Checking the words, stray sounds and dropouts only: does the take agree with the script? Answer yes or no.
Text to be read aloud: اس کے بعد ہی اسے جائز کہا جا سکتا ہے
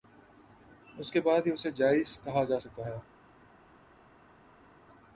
yes